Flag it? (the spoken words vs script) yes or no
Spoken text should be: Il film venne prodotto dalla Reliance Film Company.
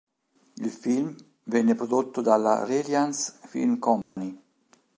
no